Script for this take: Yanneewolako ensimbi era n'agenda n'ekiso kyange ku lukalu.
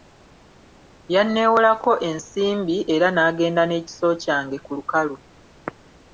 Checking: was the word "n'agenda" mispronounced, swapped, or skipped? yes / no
no